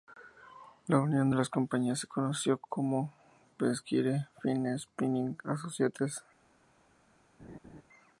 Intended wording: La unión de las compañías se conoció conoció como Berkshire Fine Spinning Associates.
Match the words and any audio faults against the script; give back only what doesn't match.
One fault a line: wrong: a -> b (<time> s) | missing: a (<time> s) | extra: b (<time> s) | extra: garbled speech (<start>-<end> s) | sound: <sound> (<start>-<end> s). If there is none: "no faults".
missing: conoció (2.6 s)
sound: laugh (7.4-7.8 s)